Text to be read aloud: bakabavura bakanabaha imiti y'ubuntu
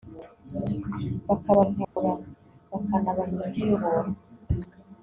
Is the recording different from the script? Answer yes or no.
no